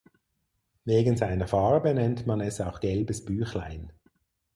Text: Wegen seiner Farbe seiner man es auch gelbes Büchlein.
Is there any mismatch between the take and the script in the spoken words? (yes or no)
yes